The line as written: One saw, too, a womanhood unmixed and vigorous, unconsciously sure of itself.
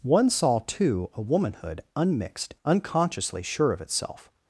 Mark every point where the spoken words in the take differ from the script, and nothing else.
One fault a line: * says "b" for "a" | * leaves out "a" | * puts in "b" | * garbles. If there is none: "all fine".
* leaves out "and vigorous"